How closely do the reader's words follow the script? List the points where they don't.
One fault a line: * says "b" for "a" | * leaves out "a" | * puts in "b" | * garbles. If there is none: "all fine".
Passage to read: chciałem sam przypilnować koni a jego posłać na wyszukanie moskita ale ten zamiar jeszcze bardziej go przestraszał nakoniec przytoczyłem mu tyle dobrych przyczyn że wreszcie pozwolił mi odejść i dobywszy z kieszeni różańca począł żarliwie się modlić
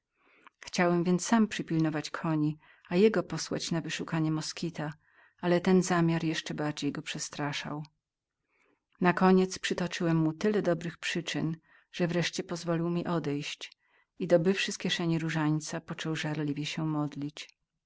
* puts in "więc"